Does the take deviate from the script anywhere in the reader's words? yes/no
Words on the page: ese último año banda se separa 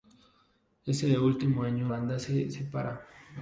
no